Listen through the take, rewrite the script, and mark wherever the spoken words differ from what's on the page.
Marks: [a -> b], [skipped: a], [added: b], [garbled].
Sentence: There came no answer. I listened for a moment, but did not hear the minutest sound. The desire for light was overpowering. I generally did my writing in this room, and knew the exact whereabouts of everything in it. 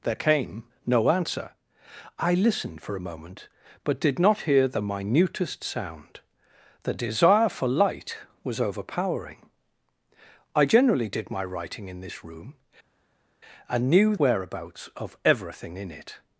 There came no answer. I listened for a moment, but did not hear the minutest sound. The desire for light was overpowering. I generally did my writing in this room, and knew [skipped: the exact] whereabouts of everything in it.